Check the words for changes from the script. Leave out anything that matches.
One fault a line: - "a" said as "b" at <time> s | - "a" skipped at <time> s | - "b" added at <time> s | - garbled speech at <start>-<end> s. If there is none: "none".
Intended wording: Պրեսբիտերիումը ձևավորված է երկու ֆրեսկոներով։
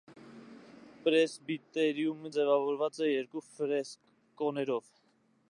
none